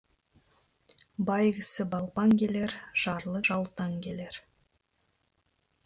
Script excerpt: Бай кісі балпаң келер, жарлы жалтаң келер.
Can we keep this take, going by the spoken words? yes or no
yes